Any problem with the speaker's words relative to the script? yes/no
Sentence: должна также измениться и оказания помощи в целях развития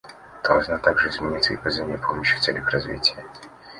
no